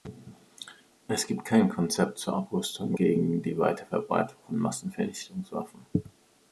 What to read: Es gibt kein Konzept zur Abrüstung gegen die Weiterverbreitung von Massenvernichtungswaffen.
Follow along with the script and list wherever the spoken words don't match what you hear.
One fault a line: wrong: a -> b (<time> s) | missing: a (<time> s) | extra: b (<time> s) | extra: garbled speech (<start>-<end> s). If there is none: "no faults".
no faults